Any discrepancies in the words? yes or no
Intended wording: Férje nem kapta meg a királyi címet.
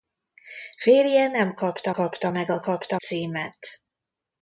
yes